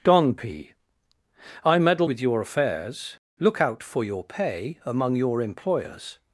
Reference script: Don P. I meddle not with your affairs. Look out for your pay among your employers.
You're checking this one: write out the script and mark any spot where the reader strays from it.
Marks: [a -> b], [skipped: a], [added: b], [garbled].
Don P. I meddle [skipped: not] with your affairs. Look out for your pay among your employers.